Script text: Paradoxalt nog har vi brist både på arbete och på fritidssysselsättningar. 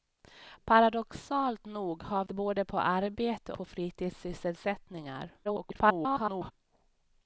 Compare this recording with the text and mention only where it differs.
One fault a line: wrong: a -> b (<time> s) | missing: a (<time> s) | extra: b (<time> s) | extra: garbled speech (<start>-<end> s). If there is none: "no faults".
missing: vi brist (2.2 s)
missing: och (3.5 s)
extra: garbled speech (5.4-6.5 s)